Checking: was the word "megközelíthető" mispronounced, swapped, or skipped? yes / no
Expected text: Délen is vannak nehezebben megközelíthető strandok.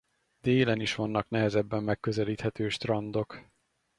no